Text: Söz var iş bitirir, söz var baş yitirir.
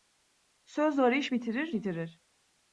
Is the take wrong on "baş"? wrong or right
wrong